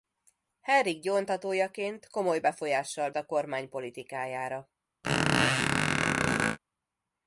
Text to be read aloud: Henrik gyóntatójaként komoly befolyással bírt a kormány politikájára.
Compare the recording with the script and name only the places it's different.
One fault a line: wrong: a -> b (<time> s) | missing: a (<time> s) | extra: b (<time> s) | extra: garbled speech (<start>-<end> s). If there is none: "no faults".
missing: bírt (3.1 s)